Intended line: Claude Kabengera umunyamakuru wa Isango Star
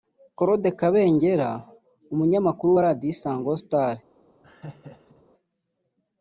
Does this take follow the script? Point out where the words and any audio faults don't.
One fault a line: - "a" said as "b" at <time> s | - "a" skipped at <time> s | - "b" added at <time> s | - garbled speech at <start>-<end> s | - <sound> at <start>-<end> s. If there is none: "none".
- "Radio" added at 2.9 s
- laugh at 4.4-5.2 s